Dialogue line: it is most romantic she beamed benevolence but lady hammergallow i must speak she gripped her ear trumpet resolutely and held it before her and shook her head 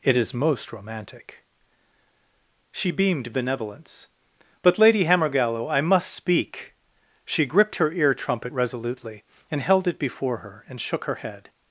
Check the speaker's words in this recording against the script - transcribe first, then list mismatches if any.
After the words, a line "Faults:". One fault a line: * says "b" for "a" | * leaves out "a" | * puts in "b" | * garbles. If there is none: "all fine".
it is most romantic she beamed benevolence but lady hammergallow i must speak she gripped her ear trumpet resolutely and held it before her and shook her head
Faults:
all fine